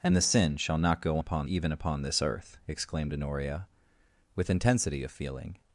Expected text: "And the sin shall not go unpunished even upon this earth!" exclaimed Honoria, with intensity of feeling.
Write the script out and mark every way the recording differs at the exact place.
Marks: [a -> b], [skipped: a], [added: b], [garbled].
"And the sin shall not go [unpunished -> upon] even upon this earth!" exclaimed Honoria, with intensity of feeling.